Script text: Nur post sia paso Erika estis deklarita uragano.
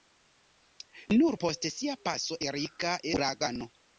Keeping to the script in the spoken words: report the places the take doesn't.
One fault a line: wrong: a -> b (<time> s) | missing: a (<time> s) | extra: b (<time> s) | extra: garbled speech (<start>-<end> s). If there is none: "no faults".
missing: estis deklarita (3.0 s)